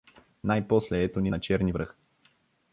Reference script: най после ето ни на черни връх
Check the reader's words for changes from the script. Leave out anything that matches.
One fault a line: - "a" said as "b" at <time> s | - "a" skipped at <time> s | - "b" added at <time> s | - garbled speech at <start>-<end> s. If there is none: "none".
none